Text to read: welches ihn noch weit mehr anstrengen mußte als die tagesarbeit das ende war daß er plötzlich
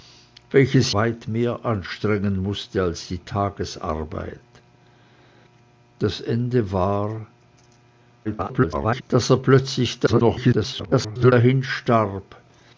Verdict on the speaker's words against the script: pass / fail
fail